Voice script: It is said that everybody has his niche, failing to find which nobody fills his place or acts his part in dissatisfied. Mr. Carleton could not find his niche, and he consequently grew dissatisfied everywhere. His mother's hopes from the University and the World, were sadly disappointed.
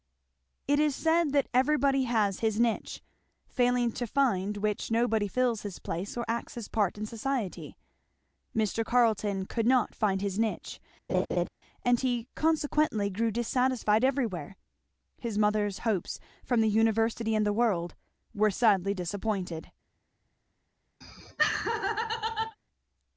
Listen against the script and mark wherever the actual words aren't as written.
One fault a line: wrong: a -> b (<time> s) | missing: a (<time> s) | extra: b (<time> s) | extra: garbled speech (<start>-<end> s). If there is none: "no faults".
wrong: dissatisfied -> society (7.0 s)